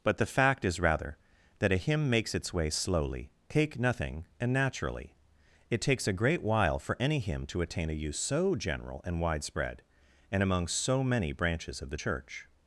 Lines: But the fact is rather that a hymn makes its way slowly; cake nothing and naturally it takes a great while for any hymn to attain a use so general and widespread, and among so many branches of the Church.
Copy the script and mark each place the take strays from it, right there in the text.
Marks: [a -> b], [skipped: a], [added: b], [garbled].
But the fact is rather that a hymn makes its way slowly; cake nothing and naturally it takes a great while for any hymn to attain a use so general and widespread, and among so many branches of the Church.